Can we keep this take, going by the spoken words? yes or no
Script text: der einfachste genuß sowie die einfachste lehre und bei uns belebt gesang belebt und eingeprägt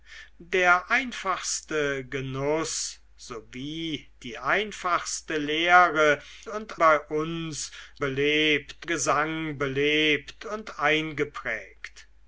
yes